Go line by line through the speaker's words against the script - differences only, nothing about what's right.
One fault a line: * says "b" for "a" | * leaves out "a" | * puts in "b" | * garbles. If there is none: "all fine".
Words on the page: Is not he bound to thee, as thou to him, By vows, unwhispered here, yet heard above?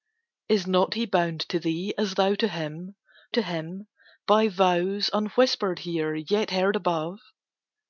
* puts in "to him"